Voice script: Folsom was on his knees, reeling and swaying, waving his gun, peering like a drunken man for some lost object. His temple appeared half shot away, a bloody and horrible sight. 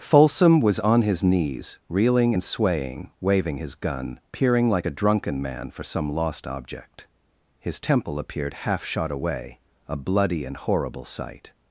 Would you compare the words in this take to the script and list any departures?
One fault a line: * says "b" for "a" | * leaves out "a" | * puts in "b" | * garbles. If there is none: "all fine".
all fine